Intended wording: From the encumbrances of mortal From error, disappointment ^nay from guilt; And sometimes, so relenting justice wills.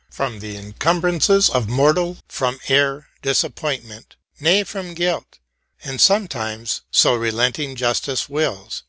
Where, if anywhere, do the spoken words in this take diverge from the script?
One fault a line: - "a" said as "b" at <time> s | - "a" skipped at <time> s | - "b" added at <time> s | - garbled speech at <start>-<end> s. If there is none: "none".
none